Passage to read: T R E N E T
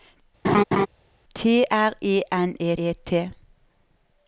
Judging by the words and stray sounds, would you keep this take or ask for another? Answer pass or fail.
fail